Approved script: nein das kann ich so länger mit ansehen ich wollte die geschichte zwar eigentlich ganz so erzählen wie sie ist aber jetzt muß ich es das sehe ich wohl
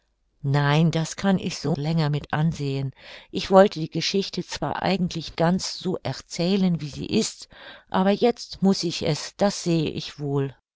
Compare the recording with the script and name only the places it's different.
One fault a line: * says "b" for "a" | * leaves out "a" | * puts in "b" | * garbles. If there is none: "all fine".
all fine